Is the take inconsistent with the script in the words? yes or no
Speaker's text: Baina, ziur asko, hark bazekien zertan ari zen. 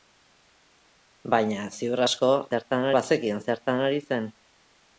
yes